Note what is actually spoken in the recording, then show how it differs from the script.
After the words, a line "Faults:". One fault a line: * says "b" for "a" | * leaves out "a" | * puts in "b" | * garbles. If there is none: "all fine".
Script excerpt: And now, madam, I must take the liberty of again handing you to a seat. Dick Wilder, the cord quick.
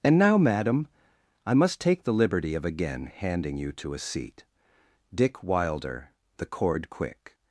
And now, madam, I must take the liberty of again handing you to a seat. Dick Wilder, the cord quick.
Faults:
all fine